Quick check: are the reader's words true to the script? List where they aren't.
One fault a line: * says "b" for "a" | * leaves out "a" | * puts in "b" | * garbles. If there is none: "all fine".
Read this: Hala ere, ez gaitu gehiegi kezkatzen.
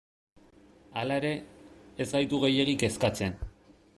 all fine